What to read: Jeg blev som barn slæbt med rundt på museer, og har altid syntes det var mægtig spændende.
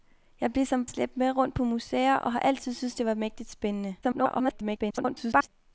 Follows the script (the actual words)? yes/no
no